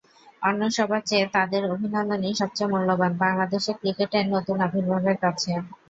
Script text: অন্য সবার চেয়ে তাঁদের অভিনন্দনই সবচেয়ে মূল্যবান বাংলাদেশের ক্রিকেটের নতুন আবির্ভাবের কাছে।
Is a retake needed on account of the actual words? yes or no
no